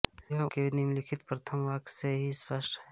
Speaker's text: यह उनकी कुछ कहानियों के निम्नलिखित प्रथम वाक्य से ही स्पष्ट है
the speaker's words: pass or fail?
fail